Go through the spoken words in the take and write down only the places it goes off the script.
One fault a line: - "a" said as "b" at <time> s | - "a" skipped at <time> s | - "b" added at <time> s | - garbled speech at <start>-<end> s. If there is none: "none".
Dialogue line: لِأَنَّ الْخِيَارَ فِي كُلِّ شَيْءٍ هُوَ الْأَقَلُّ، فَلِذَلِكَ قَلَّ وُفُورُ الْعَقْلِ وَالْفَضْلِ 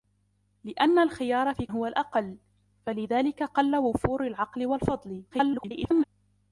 - "كُلِّ شَيْءٍ" skipped at 1.7 s
- garbled speech at 5.3-6.0 s